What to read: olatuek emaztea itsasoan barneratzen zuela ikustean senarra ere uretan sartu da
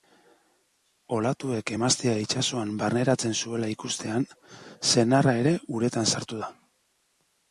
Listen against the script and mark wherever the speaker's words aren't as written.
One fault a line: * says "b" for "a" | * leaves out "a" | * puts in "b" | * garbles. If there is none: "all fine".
all fine